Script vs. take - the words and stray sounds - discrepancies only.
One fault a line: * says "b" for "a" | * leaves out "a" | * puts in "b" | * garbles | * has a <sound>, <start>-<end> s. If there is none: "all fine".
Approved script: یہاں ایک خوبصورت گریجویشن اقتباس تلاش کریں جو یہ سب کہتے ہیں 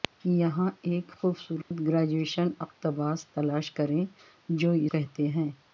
* has a dropout, 1.6-1.7 s
* leaves out "سب"